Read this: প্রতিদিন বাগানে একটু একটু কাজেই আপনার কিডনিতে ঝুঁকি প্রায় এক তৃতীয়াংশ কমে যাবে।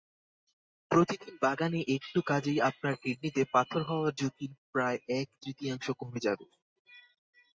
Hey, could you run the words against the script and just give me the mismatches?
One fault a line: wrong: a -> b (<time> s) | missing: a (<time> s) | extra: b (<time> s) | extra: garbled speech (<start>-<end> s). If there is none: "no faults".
missing: একটু (2.2 s)
extra: পাথর হওয়ার (3.5 s)